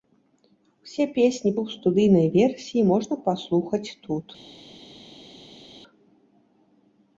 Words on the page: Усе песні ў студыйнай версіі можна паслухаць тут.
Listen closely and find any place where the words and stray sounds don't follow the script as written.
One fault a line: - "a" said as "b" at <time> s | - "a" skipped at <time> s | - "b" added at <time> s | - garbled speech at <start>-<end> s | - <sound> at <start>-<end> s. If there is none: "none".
none